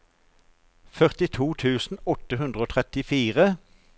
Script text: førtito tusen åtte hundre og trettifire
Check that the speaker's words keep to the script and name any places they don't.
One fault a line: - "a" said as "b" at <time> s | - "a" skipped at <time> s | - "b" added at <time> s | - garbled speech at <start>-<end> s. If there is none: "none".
none